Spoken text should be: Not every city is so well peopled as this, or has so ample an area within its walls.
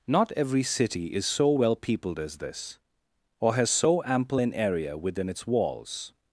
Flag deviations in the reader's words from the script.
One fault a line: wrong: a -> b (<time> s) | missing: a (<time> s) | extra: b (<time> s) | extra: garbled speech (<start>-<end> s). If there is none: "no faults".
no faults